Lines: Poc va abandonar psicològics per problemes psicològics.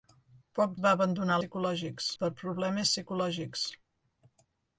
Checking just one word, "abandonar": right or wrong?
right